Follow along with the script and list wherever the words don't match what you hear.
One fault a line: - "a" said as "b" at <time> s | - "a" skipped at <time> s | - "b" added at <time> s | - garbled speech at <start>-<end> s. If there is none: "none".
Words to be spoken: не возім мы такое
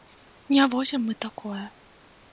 none